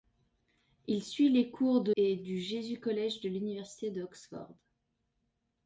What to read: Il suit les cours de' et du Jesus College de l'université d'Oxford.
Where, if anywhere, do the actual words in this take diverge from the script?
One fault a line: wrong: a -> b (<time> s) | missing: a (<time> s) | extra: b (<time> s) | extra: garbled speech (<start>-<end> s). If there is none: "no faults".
no faults